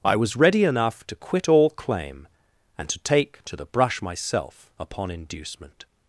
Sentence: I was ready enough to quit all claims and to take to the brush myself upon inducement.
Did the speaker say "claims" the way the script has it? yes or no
no